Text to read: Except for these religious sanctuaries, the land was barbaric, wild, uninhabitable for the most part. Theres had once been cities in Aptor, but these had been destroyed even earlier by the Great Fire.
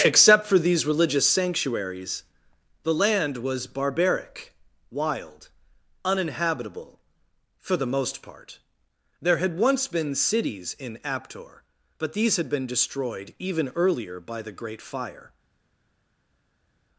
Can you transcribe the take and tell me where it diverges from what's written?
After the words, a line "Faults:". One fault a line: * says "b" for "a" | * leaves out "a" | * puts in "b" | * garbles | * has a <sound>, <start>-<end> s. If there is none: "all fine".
Except for these religious sanctuaries, the land was barbaric, wild, uninhabitable for the most part. There had once been cities in Aptor, but these had been destroyed even earlier by the Great Fire.
Faults:
* says "There" for "Theres"